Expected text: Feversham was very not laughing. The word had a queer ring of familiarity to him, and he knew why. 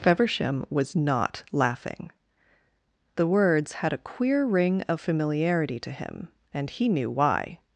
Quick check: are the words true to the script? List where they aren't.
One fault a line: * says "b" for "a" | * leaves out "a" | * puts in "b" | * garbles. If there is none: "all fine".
* leaves out "very"
* says "words" for "word"